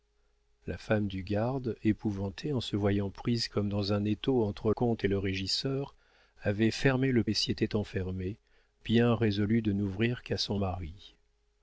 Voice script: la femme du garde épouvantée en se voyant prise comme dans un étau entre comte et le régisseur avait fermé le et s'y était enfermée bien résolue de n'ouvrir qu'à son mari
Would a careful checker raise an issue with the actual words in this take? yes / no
no